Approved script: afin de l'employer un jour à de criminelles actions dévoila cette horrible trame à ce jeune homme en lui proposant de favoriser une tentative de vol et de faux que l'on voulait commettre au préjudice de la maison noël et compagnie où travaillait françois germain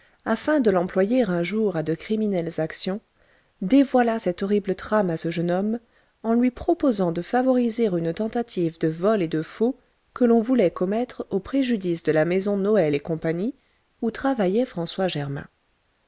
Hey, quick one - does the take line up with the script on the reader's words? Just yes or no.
yes